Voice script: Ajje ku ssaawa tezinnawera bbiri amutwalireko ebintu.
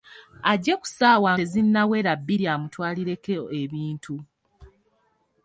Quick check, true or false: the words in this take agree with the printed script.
true